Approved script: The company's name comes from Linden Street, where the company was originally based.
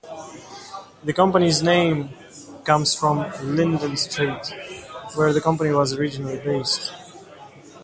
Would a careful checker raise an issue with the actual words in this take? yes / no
no